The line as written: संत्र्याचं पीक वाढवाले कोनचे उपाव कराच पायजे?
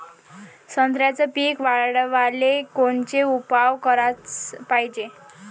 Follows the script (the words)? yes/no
yes